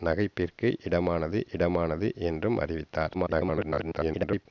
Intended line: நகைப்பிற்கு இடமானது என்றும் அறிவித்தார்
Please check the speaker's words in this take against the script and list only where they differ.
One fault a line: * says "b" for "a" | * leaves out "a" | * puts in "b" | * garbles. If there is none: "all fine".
* puts in "இடமானது"
* garbles